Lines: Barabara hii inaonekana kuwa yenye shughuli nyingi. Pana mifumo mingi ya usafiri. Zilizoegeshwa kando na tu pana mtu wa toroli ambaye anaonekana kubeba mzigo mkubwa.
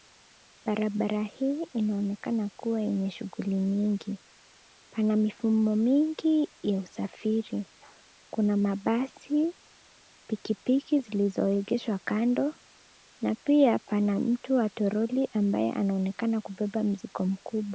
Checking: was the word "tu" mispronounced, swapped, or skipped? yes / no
yes